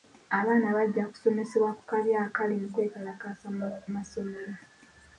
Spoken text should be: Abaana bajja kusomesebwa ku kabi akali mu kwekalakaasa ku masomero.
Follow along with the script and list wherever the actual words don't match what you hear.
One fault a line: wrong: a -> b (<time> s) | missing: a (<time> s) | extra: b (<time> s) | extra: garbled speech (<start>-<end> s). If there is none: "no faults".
wrong: ku -> mu (3.6 s)